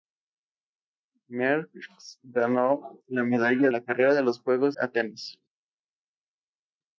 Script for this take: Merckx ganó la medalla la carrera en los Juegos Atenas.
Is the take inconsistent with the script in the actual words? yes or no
no